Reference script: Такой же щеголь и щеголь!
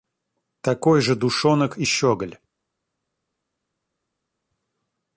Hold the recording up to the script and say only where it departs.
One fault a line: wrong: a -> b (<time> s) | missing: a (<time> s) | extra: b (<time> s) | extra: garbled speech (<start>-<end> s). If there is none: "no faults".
wrong: щеголь -> душонок (1.1 s)